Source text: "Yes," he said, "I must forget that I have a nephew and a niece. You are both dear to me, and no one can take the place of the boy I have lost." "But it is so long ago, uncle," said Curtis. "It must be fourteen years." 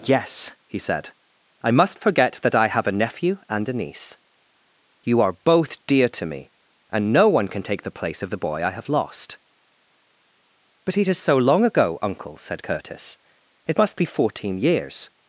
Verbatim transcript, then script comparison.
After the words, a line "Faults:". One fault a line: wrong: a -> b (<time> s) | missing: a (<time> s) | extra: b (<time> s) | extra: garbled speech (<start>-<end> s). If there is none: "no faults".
"Yes," he said, "I must forget that I have a nephew and a niece. You are both dear to me, and no one can take the place of the boy I have lost." "But it is so long ago, uncle," said Curtis. "It must be fourteen years."
Faults:
no faults